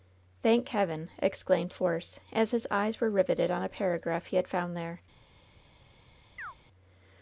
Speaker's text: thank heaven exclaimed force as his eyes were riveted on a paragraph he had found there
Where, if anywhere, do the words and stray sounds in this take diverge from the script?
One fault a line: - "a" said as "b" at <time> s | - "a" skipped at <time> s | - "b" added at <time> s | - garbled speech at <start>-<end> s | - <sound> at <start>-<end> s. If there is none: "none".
- chirp at 6.4-6.5 s